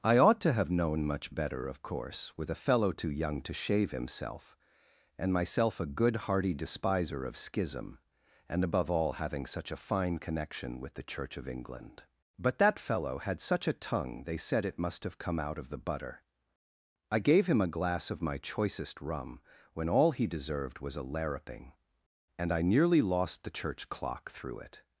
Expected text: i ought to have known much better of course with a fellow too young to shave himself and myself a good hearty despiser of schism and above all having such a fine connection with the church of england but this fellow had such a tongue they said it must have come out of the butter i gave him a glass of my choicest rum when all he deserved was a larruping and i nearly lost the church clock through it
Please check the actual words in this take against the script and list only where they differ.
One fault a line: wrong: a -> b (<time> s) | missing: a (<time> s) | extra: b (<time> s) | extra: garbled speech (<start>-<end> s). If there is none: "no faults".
wrong: this -> that (12.6 s)